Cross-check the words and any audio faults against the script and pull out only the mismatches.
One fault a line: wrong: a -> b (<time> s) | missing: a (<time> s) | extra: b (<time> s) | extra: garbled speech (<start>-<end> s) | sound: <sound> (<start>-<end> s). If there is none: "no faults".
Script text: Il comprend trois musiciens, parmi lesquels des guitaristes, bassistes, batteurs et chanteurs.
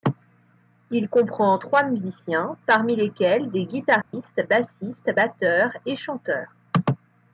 sound: dropout (4.0-4.1 s)